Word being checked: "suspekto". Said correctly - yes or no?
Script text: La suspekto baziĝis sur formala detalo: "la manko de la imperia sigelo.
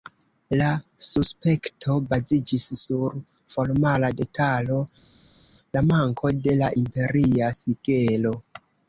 yes